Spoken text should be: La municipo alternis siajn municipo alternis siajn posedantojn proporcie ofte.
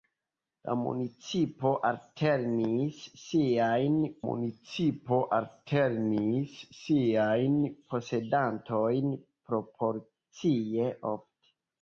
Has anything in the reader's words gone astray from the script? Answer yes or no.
no